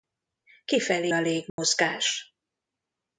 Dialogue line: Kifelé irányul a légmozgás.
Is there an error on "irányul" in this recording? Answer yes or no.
yes